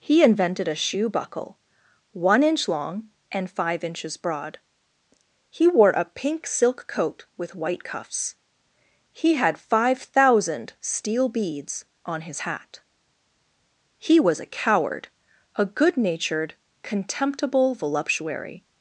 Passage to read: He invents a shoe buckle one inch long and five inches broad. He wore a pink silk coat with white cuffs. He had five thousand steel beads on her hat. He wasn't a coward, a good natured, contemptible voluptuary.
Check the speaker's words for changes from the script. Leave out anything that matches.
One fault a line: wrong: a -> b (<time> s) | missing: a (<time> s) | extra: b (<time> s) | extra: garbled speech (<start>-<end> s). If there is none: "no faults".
wrong: invents -> invented (0.2 s)
wrong: her -> his (12.2 s)
wrong: wasn't -> was (14.2 s)